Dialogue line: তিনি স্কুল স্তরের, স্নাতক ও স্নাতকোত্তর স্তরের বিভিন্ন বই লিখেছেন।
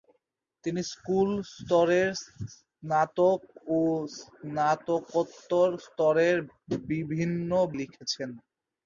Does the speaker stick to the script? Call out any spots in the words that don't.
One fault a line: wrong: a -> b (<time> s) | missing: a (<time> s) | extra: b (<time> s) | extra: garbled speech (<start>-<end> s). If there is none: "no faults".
missing: বই (7.5 s)